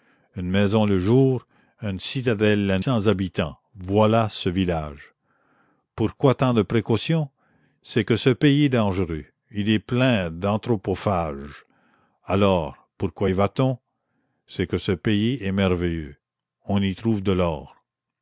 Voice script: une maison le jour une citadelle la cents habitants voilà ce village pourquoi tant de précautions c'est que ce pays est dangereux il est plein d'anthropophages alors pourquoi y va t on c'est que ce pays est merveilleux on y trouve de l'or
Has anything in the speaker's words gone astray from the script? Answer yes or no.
no